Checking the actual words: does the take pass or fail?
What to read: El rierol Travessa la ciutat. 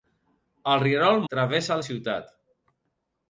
pass